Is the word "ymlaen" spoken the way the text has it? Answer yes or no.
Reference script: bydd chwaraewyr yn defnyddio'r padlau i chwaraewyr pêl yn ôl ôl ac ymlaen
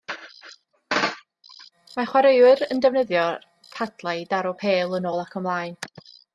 yes